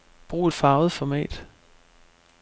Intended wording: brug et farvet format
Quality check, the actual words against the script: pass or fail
pass